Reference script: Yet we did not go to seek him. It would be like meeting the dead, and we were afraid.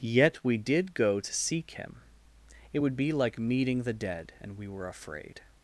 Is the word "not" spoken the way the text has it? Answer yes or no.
no